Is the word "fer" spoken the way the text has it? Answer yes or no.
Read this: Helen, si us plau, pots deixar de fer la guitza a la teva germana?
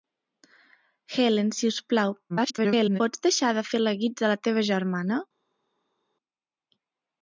yes